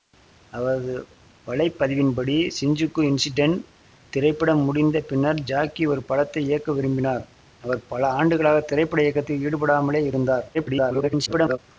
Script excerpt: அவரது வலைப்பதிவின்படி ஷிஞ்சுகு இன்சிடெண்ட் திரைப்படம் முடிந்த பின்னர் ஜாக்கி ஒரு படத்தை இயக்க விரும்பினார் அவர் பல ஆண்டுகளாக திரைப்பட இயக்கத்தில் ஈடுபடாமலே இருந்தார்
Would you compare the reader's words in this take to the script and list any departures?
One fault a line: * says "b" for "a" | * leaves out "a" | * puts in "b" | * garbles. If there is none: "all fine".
* garbles